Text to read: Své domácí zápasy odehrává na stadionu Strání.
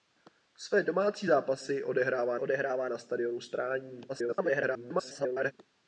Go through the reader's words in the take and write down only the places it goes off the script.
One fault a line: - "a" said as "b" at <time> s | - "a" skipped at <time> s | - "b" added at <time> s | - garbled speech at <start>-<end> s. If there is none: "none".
- "odehrává" added at 2.4 s
- garbled speech at 4.1-5.5 s